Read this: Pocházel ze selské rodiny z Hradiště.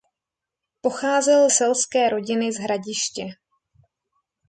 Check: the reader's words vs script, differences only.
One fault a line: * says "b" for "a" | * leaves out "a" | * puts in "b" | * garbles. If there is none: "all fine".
* leaves out "ze"